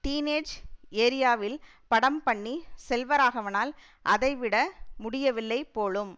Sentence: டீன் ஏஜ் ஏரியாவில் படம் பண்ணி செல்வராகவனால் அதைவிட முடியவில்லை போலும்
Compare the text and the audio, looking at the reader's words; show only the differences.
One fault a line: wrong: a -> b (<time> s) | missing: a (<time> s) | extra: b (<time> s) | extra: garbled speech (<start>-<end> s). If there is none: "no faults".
no faults